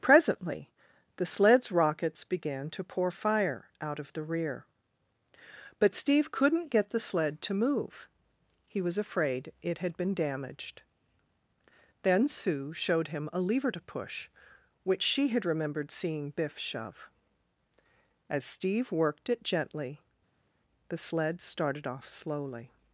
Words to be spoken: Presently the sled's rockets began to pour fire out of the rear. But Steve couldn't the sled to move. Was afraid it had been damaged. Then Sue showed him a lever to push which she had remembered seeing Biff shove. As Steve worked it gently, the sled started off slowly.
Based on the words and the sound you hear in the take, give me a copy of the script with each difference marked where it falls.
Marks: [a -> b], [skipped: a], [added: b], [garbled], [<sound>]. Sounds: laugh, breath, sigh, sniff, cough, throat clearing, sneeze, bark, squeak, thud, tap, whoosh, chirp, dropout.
Presently the sled's rockets began to pour fire out of the rear. But Steve couldn't [added: get] the sled to move. [added: He] Was afraid it had been damaged. Then Sue showed him a lever to push which she had remembered seeing Biff shove. As Steve worked it gently, the sled started off slowly.